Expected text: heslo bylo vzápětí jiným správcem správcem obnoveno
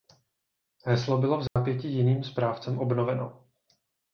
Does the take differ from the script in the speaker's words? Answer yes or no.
yes